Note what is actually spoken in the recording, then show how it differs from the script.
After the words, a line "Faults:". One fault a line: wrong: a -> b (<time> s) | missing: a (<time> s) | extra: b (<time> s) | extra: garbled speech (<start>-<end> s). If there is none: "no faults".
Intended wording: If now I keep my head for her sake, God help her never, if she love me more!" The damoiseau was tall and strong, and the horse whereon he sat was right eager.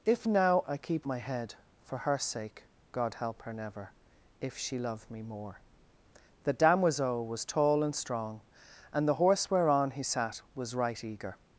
If now I keep my head for her sake, God help her never, if she love me more!" The damoiseau was tall and strong, and the horse whereon he sat was right eager.
Faults:
no faults